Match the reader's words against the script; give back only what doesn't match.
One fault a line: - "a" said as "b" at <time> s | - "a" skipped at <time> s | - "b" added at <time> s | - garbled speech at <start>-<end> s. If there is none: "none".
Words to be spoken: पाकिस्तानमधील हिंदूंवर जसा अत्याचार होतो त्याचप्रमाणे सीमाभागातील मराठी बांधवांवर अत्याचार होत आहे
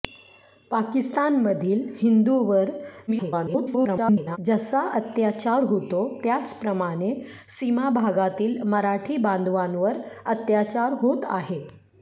- garbled speech at 3.1-4.4 s